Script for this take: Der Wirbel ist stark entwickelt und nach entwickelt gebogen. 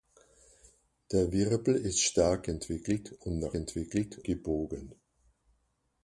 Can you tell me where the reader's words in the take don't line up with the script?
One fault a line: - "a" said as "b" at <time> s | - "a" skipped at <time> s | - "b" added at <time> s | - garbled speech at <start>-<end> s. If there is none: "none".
none